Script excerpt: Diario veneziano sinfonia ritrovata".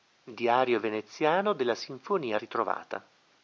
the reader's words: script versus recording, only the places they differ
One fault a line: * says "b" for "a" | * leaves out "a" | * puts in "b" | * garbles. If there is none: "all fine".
* puts in "della"